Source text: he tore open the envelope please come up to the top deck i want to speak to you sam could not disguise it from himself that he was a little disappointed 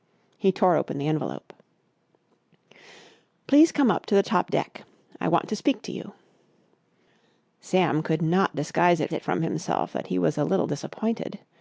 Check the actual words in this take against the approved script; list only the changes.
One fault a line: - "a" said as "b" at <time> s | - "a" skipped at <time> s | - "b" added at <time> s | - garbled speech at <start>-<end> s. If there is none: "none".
- "it" added at 9.1 s